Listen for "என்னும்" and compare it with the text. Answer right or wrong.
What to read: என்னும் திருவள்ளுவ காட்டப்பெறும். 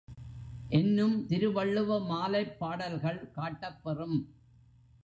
right